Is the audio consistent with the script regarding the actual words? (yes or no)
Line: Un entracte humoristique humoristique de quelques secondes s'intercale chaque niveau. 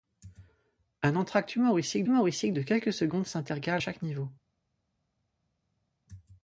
yes